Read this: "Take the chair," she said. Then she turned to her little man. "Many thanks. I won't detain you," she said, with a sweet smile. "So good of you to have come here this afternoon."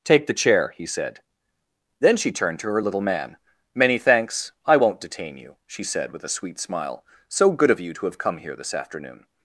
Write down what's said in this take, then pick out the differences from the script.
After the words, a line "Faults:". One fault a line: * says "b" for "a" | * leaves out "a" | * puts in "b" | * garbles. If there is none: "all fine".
"Take the chair," he said. Then she turned to her little man. "Many thanks. I won't detain you," she said, with a sweet smile. "So good of you to have come here this afternoon."
Faults:
* says "he" for "she"